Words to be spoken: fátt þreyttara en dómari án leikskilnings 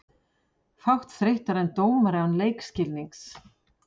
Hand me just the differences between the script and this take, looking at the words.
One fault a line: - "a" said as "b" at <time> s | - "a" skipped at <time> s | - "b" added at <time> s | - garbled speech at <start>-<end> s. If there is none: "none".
none